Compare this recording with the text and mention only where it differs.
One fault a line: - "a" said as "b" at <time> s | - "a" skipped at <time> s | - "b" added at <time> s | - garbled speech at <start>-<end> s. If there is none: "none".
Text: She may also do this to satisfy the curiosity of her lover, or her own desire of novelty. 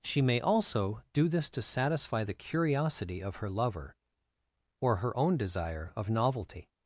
none